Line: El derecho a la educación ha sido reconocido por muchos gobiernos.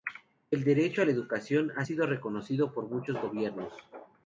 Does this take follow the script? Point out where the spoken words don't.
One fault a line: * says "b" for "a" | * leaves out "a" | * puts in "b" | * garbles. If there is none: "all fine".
all fine